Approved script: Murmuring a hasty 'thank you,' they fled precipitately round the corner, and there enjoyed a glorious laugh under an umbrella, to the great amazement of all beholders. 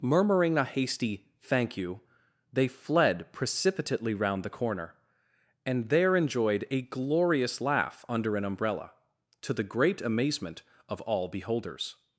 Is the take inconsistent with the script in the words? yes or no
no